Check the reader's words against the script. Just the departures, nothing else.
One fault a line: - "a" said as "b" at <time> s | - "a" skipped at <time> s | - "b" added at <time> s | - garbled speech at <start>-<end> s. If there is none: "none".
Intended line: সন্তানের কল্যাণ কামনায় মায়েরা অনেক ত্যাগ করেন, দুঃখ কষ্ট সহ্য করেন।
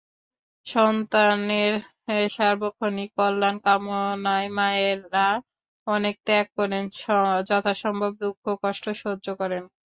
- "সার্বক্ষণিক" added at 2.3 s
- "যথাসম্ভব" added at 7.5 s